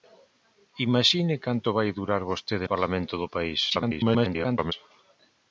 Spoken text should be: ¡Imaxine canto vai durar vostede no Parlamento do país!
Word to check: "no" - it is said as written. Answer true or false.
false